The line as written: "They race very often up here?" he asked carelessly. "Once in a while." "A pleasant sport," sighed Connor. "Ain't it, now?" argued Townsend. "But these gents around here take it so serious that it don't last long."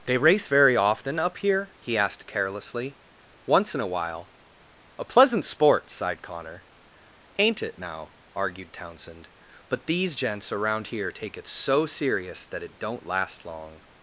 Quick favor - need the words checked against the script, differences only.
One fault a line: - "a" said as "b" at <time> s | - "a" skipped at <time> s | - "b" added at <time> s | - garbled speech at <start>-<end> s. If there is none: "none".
none